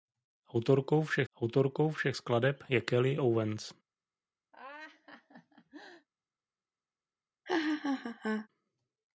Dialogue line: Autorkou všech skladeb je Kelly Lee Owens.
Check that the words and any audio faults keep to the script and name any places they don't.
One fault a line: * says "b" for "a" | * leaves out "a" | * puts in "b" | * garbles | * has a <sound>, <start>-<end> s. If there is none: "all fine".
* puts in "autorkou všech"
* leaves out "Lee"
* has a laugh, 4.5-6.1 s
* has a laugh, 7.4-8.5 s